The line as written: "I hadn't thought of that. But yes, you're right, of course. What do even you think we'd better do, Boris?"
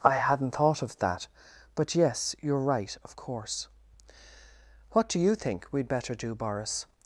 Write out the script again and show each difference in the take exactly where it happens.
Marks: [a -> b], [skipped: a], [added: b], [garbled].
"I hadn't thought of that. But yes, you're right, of course. What do [skipped: even] you think we'd better do, Boris?"